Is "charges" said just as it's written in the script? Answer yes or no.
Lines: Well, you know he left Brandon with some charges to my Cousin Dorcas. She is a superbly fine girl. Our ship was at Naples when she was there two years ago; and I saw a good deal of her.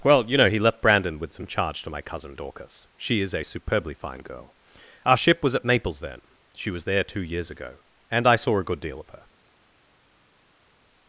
no